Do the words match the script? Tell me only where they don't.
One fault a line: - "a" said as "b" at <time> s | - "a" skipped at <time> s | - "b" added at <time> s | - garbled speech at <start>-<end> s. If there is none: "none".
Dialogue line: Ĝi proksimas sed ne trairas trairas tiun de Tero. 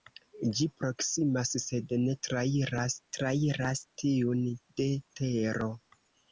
none